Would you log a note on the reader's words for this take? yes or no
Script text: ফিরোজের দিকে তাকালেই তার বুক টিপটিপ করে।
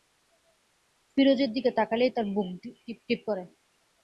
no